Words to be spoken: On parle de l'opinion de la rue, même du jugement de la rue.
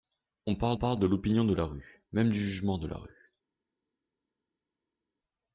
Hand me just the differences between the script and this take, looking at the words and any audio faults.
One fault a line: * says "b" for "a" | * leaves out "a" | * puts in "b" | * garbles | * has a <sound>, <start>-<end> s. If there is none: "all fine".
* puts in "parle"